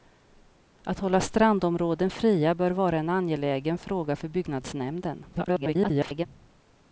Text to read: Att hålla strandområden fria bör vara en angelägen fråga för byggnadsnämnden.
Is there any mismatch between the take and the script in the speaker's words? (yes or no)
yes